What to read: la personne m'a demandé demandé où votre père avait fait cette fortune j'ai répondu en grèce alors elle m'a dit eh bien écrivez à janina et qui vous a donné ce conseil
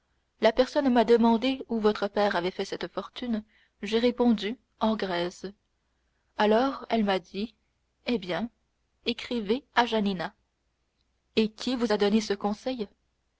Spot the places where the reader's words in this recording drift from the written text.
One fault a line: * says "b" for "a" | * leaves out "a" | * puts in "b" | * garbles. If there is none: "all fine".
* leaves out "demandé"